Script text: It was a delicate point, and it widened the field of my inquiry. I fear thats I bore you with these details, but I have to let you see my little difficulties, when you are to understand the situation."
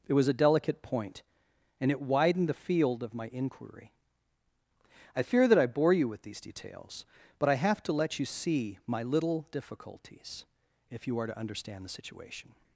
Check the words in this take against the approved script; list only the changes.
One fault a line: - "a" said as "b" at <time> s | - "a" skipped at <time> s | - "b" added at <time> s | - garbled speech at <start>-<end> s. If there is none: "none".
- "thats" said as "that" at 5.5 s
- "when" said as "if" at 10.9 s